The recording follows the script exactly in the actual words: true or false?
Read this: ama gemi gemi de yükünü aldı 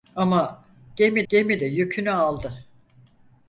true